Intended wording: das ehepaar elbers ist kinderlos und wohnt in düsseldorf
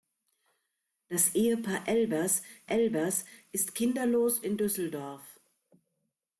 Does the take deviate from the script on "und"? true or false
true